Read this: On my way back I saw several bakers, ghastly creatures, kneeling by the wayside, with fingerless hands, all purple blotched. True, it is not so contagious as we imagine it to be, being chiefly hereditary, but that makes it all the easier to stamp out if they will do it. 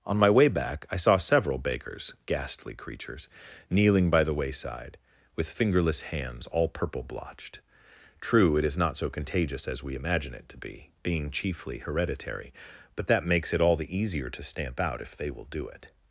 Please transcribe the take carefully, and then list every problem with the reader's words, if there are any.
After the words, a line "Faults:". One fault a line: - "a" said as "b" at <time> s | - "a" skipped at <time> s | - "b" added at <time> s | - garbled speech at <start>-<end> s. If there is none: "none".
On my way back I saw several bakers, ghastly creatures, kneeling by the wayside, with fingerless hands, all purple blotched. True, it is not so contagious as we imagine it to be, being chiefly hereditary, but that makes it all the easier to stamp out if they will do it.
Faults:
none